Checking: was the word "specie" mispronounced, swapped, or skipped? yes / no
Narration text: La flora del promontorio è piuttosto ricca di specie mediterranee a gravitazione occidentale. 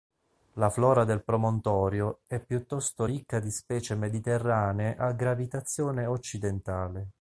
no